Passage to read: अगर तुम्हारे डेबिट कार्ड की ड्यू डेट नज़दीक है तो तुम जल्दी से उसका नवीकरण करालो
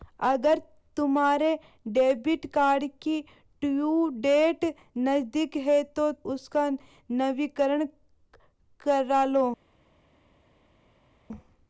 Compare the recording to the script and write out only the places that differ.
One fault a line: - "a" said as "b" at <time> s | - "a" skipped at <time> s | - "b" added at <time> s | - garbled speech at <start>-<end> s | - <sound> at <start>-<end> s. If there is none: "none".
- "तुम जल्दी से" skipped at 6.1 s